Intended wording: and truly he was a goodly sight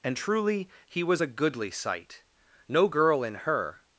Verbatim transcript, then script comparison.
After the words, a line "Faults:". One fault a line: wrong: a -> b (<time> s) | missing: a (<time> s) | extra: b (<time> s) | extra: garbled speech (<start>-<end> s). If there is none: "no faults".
and truly he was a goodly sight no girl in her
Faults:
extra: no girl in her (2.7 s)